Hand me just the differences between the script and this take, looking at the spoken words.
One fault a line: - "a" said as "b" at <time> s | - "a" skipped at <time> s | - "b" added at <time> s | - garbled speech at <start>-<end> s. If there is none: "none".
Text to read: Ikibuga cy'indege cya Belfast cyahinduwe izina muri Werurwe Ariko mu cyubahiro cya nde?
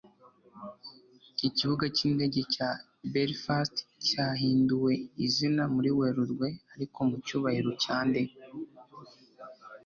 none